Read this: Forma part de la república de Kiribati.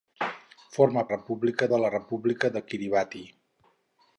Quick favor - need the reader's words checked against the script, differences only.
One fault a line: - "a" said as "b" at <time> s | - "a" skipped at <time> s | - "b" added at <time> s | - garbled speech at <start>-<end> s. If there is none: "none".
- "part" said as "república" at 1.1 s